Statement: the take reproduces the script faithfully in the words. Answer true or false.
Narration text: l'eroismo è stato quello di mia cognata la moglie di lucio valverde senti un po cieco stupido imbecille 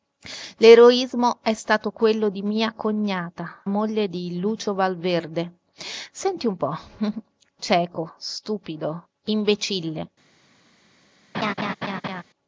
false